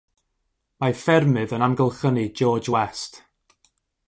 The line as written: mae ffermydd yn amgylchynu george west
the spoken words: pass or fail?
pass